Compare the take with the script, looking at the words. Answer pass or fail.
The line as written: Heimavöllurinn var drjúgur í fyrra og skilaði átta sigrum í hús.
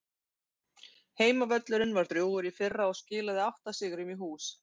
pass